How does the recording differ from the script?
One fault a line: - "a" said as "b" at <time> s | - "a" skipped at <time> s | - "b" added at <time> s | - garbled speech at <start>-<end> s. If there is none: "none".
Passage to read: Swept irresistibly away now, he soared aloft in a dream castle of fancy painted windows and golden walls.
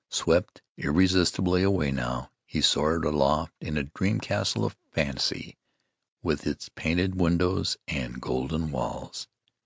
- "with its" added at 6.2 s